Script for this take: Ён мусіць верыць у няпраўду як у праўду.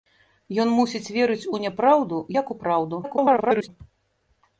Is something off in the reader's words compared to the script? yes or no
yes